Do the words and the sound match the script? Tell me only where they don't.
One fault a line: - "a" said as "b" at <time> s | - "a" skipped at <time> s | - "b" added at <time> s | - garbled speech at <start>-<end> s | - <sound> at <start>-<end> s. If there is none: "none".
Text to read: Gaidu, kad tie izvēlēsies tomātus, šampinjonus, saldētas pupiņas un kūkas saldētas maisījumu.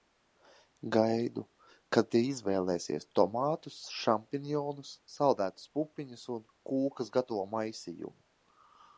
- "saldētas" said as "gatavo" at 7.2 s